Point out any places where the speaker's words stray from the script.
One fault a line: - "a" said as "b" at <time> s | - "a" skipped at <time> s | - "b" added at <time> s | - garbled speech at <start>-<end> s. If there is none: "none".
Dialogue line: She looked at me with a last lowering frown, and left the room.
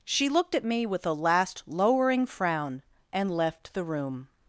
none